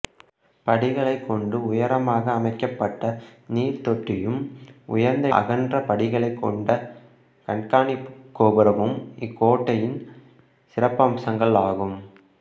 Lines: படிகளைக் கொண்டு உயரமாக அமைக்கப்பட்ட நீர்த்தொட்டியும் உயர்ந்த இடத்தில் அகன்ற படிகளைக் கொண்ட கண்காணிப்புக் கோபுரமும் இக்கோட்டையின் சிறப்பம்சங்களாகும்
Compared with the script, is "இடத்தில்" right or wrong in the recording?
wrong